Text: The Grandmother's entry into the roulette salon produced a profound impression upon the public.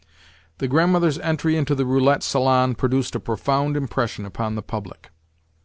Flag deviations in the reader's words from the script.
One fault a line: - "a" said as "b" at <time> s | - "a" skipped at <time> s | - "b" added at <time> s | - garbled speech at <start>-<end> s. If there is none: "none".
none